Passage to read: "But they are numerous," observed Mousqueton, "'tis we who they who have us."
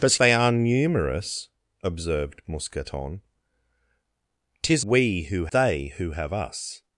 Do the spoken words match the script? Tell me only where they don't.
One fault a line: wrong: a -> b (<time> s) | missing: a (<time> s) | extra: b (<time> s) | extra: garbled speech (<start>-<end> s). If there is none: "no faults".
no faults